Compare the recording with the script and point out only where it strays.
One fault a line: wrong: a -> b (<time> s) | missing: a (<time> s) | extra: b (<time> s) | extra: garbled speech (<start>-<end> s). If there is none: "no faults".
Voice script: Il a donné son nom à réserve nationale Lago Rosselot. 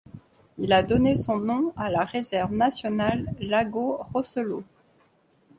extra: la (1.9 s)